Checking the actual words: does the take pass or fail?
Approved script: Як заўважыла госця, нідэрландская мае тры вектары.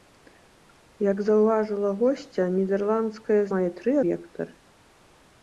pass